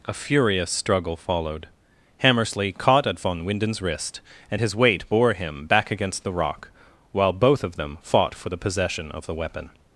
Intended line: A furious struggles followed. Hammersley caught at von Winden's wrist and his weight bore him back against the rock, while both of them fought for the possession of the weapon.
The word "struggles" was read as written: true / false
false